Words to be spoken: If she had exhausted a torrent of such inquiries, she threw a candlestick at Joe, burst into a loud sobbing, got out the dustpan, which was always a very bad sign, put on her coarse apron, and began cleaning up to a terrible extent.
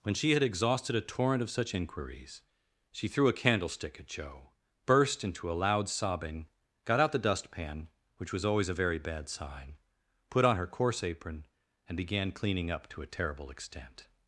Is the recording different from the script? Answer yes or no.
yes